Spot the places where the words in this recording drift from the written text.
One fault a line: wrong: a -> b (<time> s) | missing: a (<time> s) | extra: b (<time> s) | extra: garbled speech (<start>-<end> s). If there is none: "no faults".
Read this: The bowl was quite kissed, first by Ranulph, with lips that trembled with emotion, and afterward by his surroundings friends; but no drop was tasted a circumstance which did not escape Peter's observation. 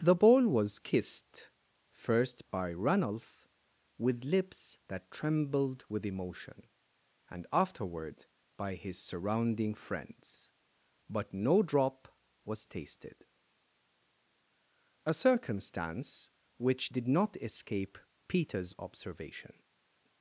missing: quite (0.8 s)
wrong: surroundings -> surrounding (9.0 s)